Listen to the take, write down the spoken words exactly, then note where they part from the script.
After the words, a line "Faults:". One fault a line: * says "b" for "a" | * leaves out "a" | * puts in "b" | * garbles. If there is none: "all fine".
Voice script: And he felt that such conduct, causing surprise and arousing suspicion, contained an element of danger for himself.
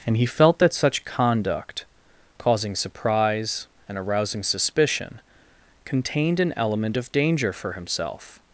And he felt that such conduct, causing surprise and arousing suspicion, contained an element of danger for himself.
Faults:
all fine